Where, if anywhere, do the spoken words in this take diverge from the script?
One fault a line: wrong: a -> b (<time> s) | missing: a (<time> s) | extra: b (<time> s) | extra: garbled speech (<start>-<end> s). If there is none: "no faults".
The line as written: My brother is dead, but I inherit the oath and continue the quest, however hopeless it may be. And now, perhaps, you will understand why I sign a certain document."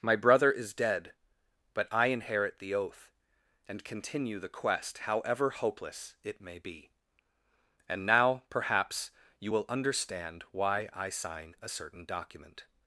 no faults